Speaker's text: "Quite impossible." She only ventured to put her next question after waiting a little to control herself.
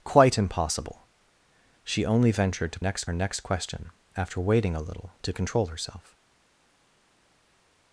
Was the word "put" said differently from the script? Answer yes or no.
yes